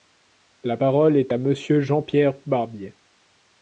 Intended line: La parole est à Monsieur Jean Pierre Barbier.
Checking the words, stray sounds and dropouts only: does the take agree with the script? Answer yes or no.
yes